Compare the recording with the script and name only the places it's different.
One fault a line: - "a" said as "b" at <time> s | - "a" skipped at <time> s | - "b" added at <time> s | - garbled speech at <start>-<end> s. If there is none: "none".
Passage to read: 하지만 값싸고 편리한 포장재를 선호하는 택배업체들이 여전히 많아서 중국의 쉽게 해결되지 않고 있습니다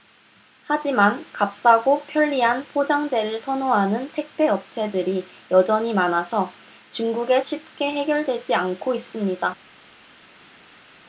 none